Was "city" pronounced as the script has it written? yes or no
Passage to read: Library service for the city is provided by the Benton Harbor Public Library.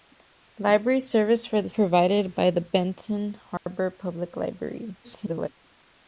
no